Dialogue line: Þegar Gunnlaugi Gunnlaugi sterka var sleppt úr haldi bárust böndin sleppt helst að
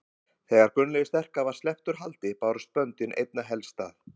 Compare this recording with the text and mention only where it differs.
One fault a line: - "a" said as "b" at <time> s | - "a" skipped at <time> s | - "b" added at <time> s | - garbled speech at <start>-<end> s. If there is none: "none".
- "Gunnlaugi" skipped at 1.1 s
- "sleppt" said as "einna" at 3.2 s